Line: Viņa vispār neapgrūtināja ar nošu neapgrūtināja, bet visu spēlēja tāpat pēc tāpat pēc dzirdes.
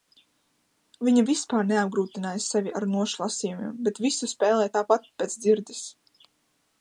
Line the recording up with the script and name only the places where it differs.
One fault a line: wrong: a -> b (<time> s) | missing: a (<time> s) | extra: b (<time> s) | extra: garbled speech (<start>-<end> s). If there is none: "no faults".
extra: sevi (2.5 s)
wrong: neapgrūtināja -> lasījumiem (3.2 s)
missing: tāpat pēc (5.4 s)